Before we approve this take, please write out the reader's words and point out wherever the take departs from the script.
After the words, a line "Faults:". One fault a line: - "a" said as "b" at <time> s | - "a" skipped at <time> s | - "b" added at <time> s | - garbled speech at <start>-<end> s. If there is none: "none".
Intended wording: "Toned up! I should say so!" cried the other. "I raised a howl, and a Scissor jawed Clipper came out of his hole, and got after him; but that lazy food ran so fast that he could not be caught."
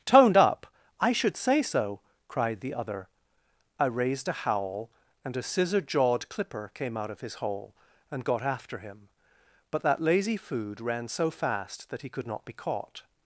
"Toned up! I should say so!" cried the other. "I raised a howl, and a Scissor jawed Clipper came out of his hole, and got after him; but that lazy food ran so fast that he could not be caught."
Faults:
none